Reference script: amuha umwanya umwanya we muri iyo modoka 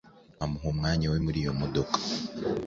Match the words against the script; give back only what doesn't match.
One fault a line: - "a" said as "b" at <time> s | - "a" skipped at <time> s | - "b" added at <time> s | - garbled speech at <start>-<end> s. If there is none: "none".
- "umwanya" skipped at 1.1 s